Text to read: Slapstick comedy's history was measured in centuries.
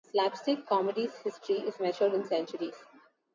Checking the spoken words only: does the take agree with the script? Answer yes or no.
no